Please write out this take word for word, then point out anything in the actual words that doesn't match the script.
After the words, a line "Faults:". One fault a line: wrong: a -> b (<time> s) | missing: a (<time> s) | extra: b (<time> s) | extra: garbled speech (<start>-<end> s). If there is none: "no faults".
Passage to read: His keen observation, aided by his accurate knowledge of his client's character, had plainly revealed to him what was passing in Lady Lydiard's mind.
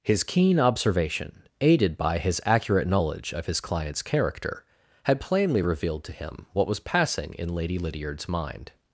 His keen observation, aided by his accurate knowledge of his client's character, had plainly revealed to him what was passing in Lady Lydiard's mind.
Faults:
no faults